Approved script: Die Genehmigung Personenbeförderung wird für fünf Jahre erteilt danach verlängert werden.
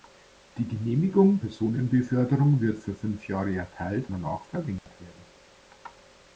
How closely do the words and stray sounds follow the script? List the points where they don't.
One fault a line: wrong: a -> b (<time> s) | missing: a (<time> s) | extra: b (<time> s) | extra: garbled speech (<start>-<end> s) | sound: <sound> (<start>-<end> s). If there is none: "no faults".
sound: dropout (4.8-4.9 s)